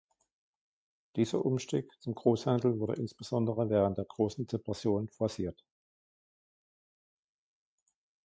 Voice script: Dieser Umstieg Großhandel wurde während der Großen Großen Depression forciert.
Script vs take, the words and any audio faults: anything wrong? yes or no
yes